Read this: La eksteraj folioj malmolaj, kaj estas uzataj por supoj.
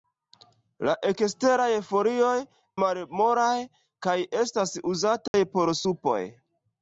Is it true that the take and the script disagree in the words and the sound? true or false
true